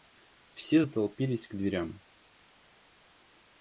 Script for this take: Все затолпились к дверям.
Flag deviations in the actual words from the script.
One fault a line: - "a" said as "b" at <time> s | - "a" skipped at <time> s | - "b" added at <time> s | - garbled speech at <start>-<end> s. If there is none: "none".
none